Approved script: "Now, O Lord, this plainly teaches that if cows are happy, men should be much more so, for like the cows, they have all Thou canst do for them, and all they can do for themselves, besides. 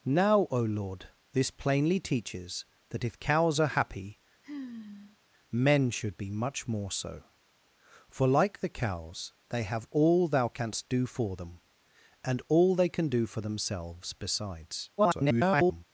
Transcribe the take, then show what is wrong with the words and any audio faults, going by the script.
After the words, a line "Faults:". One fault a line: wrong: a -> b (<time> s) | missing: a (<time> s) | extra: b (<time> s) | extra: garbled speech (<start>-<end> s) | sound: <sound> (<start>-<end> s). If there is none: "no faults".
"Now, O Lord, this plainly teaches that if cows are happy, men should be much more so, for like the cows, they have all Thou canst do for them, and all they can do for themselves, besides. [garbled]
Faults:
sound: sigh (4.4-5.2 s)
extra: garbled speech (15.0-15.8 s)